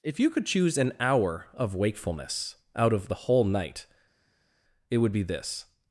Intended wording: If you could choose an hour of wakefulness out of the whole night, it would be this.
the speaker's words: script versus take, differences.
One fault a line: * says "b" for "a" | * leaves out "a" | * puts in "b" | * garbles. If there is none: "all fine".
all fine